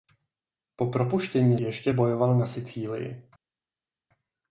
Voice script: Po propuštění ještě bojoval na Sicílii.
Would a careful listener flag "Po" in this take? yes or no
no